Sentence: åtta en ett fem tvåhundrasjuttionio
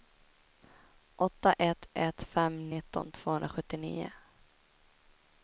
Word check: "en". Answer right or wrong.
wrong